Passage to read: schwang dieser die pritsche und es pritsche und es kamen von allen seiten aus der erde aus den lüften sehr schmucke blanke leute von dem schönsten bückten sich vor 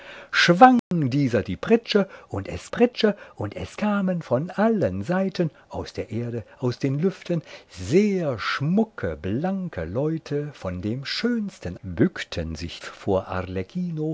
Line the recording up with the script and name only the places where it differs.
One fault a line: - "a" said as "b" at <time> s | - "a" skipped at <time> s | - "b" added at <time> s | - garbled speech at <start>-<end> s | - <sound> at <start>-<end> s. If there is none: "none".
- dropout at 0.8-0.9 s